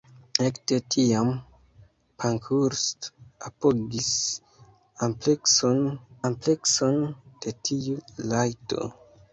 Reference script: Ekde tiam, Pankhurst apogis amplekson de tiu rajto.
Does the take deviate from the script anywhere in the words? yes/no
yes